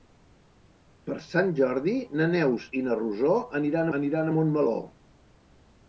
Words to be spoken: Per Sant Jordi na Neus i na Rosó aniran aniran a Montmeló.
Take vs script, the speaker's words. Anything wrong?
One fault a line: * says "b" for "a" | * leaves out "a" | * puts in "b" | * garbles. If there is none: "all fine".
all fine